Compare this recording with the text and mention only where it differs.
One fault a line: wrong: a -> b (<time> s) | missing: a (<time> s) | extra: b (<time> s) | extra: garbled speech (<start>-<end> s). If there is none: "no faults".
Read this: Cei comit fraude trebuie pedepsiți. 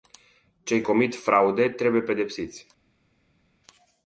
no faults